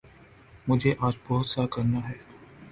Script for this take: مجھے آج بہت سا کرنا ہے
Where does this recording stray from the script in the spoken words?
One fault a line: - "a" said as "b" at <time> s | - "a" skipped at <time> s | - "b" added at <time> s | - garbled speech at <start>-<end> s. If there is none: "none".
none